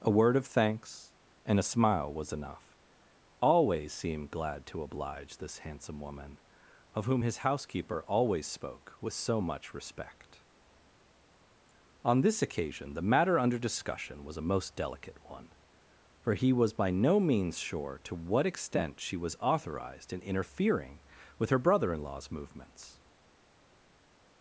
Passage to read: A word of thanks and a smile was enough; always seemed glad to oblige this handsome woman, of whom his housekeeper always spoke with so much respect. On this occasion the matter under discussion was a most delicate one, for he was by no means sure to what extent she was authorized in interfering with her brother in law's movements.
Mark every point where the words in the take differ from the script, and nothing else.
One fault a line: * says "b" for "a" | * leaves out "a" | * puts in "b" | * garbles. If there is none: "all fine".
all fine